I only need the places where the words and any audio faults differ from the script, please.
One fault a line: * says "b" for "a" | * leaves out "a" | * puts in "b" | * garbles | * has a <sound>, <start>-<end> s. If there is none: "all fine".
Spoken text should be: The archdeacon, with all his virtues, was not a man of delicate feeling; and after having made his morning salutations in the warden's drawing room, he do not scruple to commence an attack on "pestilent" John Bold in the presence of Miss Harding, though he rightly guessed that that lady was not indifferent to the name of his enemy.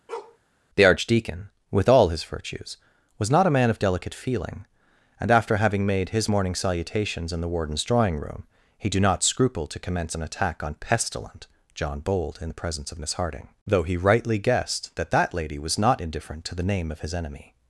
* has a bark, 0.1-0.4 s